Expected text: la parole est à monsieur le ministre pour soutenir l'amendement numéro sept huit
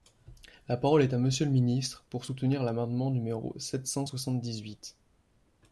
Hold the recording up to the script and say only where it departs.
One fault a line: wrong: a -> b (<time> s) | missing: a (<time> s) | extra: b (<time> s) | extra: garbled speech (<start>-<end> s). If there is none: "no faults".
extra: cent soixante dix (3.8 s)